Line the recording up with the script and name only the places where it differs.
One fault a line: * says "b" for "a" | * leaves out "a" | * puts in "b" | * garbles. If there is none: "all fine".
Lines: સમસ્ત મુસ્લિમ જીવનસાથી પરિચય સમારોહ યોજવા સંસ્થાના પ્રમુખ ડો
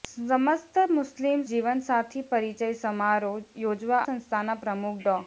all fine